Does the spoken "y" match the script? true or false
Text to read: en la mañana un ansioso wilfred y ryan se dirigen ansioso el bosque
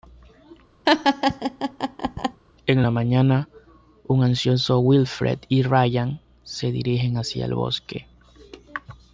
true